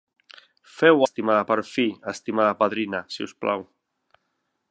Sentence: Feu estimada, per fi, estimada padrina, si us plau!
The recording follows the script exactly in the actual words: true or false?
true